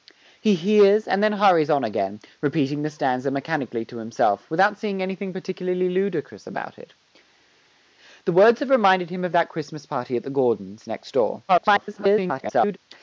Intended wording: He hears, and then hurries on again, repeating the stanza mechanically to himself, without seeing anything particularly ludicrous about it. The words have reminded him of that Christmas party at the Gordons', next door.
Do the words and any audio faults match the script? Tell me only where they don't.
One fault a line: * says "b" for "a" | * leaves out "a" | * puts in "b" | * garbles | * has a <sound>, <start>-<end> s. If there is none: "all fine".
* garbles